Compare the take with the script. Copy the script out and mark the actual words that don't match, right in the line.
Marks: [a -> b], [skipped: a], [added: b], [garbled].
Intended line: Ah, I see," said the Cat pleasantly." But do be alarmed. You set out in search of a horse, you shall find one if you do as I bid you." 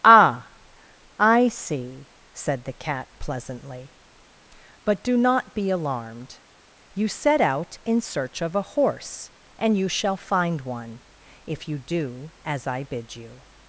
Ah, I see," said the Cat pleasantly." But do [added: not] be alarmed. You set out in search of a horse, [added: and] you shall find one if you do as I bid you."